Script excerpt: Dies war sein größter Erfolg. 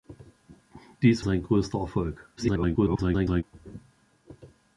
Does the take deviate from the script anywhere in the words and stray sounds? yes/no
yes